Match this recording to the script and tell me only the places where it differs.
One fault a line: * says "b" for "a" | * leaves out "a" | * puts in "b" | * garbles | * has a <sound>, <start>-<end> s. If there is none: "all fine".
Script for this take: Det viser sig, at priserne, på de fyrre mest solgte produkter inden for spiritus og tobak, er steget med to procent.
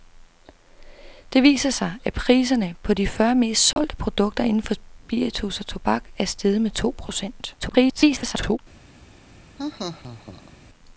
* has a dropout, 3.7-3.8 s
* garbles
* has a laugh, 9.6-10.6 s